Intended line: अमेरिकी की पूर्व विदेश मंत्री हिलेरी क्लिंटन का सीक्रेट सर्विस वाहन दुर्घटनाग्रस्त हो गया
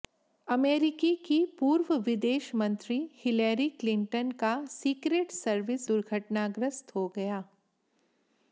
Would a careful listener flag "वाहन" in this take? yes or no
yes